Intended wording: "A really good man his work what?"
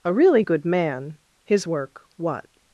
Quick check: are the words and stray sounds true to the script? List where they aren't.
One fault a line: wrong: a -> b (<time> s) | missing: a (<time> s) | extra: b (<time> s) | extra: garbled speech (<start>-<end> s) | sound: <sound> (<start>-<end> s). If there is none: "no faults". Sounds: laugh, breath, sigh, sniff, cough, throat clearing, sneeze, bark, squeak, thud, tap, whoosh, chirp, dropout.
no faults